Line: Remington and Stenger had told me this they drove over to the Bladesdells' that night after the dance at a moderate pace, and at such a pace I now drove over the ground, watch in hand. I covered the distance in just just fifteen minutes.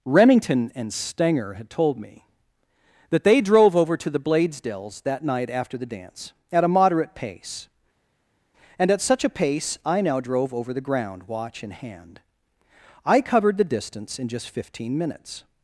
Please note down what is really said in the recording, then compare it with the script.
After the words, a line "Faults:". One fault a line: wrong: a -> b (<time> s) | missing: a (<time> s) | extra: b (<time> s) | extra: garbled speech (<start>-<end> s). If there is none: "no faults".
Remington and Stenger had told me that they drove over to the Bladesdells' that night after the dance at a moderate pace, and at such a pace I now drove over the ground, watch in hand. I covered the distance in just fifteen minutes.
Faults:
wrong: this -> that (3.1 s)
missing: just (14.5 s)